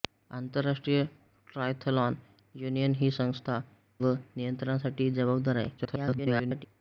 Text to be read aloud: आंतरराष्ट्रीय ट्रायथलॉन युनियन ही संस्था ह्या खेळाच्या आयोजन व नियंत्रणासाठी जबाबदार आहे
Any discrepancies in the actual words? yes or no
yes